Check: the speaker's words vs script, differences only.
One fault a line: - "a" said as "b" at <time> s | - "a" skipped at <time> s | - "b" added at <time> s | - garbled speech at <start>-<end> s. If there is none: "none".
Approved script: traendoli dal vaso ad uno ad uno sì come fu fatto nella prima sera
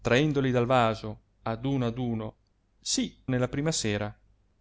- "come fu fatto" skipped at 3.2 s